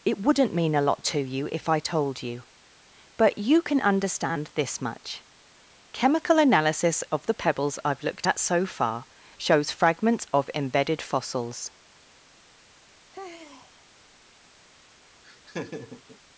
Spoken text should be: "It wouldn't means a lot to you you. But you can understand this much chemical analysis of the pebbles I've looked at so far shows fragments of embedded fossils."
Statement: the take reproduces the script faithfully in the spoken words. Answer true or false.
false